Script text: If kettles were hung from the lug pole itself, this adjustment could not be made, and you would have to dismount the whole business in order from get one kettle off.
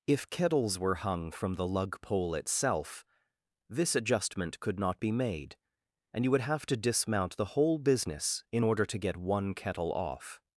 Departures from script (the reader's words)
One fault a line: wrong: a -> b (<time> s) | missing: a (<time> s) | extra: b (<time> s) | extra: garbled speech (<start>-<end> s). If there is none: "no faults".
wrong: from -> to (8.9 s)